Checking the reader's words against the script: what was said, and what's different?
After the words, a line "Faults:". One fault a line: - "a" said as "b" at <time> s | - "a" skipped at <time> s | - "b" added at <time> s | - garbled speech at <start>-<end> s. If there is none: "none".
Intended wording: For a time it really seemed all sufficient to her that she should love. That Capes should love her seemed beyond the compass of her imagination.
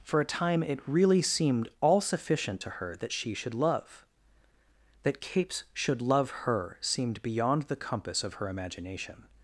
For a time it really seemed all sufficient to her that she should love. That Capes should love her seemed beyond the compass of her imagination.
Faults:
none